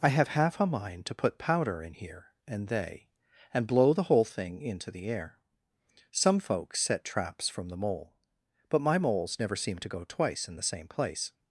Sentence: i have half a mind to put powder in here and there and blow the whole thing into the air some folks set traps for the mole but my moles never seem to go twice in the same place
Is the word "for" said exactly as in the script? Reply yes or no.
no